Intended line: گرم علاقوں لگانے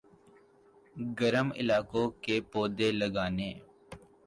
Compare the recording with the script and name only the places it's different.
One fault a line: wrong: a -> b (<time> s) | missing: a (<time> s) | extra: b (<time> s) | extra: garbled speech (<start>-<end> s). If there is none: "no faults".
extra: کے پودے (2.2 s)